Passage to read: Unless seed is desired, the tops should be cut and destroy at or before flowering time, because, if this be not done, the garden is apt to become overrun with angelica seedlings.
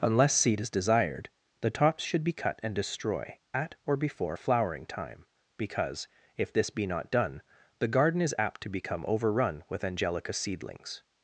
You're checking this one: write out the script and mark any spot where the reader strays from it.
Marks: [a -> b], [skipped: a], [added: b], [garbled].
Unless seed is desired, the tops should be cut and destroy at or before flowering time, because, if this be not done, the garden is apt to become overrun with angelica seedlings.